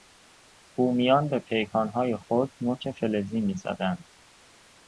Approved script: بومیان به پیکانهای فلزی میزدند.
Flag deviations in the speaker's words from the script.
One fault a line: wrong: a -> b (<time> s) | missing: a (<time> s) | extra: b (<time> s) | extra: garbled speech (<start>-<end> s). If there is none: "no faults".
extra: خود نوک (2.2 s)